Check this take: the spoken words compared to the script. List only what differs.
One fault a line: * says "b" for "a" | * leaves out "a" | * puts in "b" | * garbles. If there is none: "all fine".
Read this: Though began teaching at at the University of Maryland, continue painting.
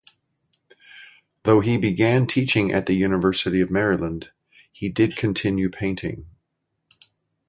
* puts in "he"
* leaves out "at"
* puts in "he did"